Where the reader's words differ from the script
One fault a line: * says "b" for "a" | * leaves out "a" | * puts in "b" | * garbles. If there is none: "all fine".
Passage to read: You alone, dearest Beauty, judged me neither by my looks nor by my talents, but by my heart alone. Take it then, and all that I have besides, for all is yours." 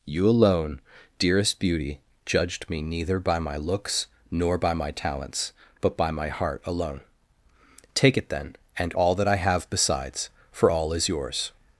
all fine